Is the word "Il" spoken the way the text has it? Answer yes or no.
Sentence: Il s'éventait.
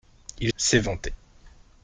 yes